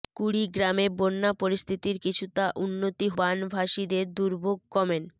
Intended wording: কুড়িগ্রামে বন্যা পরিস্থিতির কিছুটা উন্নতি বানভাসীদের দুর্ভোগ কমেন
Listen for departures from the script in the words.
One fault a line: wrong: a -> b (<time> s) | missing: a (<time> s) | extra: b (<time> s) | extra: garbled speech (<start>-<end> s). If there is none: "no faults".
no faults